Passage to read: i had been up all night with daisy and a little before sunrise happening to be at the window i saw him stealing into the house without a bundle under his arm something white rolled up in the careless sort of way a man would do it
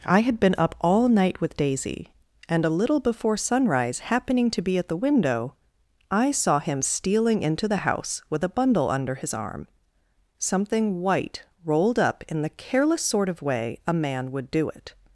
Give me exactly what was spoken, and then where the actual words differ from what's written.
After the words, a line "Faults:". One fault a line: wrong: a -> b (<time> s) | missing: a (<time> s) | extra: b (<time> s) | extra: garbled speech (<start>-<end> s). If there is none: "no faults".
i had been up all night with daisy and a little before sunrise happening to be at the window i saw him stealing into the house with a bundle under his arm something white rolled up in the careless sort of way a man would do it
Faults:
wrong: without -> with (8.3 s)